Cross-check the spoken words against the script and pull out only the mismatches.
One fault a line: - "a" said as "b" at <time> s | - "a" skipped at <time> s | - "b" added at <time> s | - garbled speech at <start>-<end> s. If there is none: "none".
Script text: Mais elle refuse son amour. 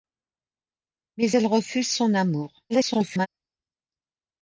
- garbled speech at 2.7-3.3 s